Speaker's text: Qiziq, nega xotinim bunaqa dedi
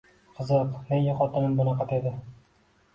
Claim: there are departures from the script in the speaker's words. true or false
false